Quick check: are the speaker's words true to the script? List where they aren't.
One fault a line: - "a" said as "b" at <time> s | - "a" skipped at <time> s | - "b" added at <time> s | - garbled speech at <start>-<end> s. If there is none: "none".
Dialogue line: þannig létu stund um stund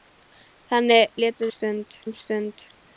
none